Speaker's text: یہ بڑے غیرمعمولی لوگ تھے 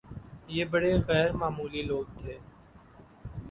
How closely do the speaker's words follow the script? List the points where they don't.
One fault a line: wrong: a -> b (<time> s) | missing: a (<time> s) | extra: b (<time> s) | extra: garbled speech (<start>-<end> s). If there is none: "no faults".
no faults